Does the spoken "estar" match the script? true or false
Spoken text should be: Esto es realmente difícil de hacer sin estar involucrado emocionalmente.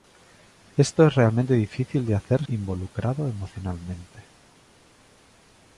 false